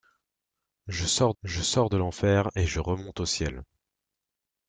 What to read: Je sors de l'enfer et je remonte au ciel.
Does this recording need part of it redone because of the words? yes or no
yes